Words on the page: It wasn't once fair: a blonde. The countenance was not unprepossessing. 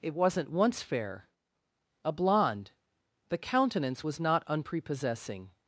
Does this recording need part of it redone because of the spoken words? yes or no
no